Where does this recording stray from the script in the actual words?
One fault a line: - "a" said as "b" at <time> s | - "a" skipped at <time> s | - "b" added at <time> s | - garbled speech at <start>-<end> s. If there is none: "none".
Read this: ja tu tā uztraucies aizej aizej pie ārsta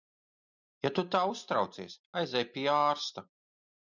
- "aizej" skipped at 2.4 s